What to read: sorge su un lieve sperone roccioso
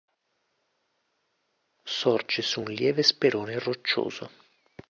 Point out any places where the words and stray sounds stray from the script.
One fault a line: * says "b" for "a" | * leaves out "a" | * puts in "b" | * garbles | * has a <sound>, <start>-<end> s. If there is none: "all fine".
all fine